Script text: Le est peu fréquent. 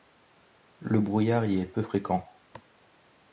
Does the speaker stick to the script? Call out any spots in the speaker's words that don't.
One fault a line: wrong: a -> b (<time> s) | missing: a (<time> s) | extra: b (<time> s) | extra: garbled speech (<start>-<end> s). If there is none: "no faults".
extra: brouillard y (1.0 s)